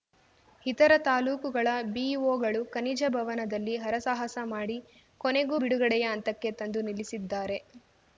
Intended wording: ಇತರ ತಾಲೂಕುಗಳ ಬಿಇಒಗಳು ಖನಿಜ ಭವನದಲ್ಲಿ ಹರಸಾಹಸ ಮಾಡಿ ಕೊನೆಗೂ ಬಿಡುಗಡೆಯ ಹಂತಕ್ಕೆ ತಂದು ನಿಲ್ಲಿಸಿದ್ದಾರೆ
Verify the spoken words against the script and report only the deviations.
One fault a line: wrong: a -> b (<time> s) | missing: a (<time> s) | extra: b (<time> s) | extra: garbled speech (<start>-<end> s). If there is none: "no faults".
no faults